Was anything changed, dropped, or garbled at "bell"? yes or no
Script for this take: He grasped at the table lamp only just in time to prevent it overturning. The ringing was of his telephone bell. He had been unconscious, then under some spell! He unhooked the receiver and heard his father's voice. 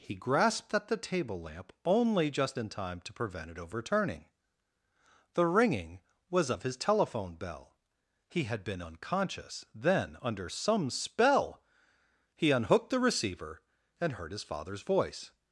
no